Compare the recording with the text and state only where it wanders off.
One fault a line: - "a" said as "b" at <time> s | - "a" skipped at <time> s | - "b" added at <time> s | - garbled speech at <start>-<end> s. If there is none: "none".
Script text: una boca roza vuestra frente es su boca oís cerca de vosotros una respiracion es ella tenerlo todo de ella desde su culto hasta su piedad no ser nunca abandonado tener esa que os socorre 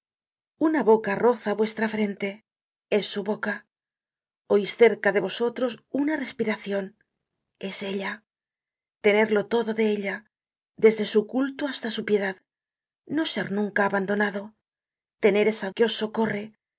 none